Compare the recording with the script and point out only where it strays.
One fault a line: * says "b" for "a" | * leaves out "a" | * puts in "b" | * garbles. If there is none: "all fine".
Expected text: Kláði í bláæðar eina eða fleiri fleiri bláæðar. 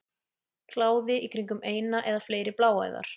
* says "kringum" for "bláæðar"
* leaves out "fleiri"